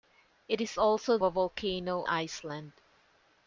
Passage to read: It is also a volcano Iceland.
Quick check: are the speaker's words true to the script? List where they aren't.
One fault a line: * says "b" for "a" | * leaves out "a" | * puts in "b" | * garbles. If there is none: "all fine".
all fine